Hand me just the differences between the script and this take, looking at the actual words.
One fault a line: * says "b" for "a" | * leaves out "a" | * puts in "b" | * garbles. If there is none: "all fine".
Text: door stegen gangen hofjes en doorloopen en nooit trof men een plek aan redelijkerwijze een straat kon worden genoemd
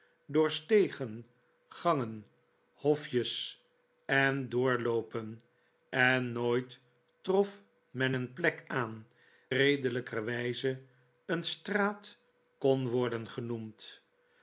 all fine